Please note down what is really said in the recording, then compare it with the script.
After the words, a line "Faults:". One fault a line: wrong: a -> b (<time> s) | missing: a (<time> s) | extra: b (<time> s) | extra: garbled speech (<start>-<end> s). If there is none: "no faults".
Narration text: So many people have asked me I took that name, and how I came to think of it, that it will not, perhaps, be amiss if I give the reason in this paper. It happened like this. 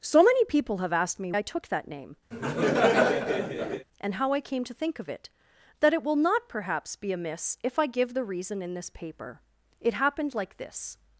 So many people have asked me I took that name, and how I came to think of it, that it will not, perhaps, be amiss if I give the reason in this paper. It happened like this.
Faults:
no faults